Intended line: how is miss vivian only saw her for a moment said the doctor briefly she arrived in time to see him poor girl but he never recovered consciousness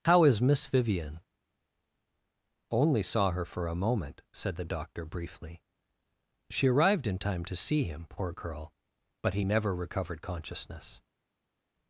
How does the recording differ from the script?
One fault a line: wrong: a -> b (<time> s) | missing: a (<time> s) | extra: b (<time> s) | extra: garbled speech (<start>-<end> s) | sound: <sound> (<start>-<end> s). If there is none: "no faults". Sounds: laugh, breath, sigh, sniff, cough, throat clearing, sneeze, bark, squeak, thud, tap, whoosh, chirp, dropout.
no faults